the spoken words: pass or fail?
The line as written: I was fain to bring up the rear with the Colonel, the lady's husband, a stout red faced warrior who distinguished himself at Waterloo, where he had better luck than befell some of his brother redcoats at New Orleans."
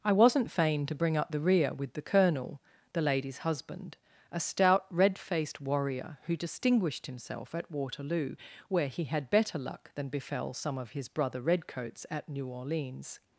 fail